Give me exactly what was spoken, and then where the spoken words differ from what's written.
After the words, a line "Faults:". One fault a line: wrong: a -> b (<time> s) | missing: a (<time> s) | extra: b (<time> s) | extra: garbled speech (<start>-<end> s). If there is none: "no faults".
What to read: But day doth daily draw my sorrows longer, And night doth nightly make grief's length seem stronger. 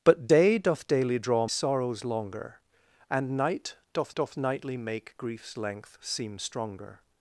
But day doth daily draw sorrows longer, And night doth doth nightly make grief's length seem stronger.
Faults:
missing: my (1.5 s)
extra: doth (4.2 s)